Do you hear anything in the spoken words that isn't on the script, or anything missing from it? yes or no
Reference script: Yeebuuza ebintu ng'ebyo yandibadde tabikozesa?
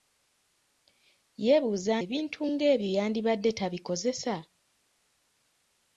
no